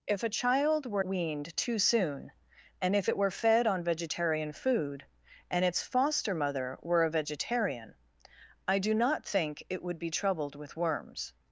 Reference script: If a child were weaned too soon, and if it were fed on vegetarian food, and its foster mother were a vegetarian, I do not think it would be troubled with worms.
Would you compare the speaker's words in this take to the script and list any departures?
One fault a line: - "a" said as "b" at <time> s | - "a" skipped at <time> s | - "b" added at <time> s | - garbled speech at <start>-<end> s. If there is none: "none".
none